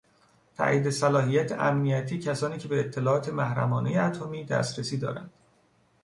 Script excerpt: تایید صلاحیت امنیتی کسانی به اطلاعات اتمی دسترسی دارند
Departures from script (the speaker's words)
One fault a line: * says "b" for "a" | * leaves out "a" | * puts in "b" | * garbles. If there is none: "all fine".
* puts in "که"
* puts in "محرمانهی"